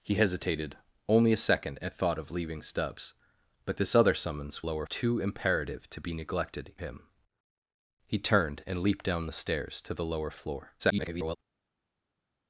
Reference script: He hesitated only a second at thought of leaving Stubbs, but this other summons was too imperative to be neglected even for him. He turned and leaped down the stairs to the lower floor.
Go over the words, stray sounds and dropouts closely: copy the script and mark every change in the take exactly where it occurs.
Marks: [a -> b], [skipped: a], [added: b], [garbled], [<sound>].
He hesitated only a second at thought of leaving Stubbs, but this other summons [was -> lower] too imperative to be neglected [skipped: even for] him. He turned and leaped down the stairs to the lower floor. [garbled]